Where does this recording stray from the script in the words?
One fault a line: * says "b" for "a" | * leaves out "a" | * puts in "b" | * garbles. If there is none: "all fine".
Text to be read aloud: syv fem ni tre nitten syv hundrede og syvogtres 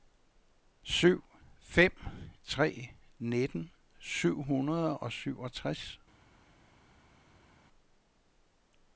* leaves out "ni"